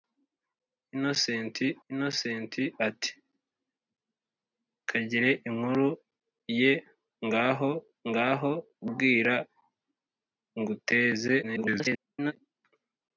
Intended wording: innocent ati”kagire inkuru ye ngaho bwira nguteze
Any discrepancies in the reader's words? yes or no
yes